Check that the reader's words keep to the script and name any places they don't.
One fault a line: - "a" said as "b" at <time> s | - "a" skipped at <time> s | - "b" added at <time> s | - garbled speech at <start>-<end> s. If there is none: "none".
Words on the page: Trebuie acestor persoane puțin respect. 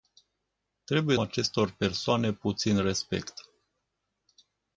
none